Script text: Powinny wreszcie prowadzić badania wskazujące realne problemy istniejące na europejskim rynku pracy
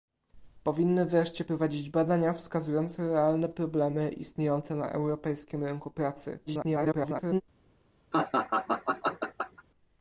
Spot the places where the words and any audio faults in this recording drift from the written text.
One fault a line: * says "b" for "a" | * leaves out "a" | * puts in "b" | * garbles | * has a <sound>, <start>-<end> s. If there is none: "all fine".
* garbles
* has a laugh, 8.1-9.6 s